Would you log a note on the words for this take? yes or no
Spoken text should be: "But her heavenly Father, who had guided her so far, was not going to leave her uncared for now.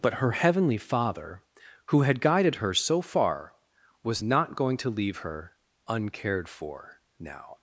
no